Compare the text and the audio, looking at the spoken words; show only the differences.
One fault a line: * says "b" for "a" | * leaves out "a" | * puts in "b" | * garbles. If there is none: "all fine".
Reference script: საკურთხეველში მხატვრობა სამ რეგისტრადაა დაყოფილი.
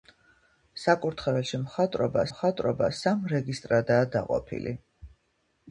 * puts in "მხატვრობა"